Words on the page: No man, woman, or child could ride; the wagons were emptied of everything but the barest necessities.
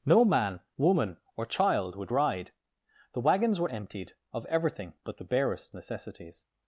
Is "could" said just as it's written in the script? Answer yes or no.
no